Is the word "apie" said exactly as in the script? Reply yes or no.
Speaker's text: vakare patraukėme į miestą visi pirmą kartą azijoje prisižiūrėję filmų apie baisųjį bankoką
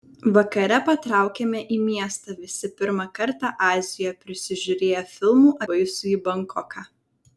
no